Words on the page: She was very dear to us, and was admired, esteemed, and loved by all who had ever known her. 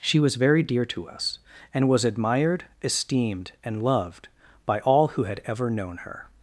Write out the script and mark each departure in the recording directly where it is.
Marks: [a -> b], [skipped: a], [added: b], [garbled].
She was very dear to us, and was admired, esteemed, and loved by all who had ever known her.